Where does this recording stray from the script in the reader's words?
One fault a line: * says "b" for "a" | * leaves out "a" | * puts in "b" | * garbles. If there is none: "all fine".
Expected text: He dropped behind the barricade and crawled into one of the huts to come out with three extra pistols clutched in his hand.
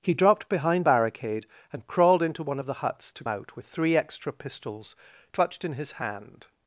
* leaves out "the"
* leaves out "come"